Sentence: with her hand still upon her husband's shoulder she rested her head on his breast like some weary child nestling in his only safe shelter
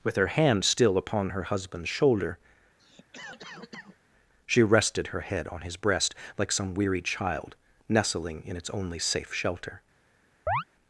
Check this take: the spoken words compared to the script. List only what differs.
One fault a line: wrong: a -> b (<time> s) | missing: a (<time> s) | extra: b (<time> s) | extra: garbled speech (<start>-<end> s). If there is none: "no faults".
wrong: his -> its (8.5 s)